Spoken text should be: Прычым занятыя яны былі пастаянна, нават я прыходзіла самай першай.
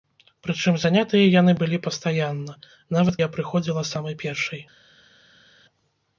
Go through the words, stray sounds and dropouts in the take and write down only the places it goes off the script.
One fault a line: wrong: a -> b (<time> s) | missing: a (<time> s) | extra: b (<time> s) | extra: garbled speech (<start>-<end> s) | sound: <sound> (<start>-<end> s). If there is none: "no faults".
no faults